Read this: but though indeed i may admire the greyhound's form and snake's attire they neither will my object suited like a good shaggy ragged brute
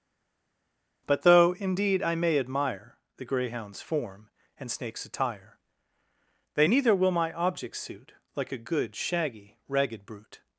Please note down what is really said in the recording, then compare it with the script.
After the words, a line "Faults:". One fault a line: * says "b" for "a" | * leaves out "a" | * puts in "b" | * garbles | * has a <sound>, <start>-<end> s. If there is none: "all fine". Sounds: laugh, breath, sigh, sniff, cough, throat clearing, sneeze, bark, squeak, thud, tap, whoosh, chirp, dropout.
but though indeed i may admire the greyhound's form and snake's attire they neither will my object suit like a good shaggy ragged brute
Faults:
* says "suit" for "suited"